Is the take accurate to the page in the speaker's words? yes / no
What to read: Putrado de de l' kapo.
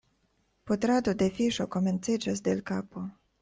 no